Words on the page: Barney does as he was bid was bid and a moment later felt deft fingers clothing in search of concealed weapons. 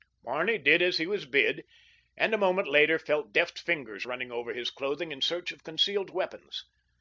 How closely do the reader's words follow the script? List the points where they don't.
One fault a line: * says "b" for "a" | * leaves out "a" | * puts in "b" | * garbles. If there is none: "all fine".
* says "did" for "does"
* leaves out "was bid"
* puts in "running over his"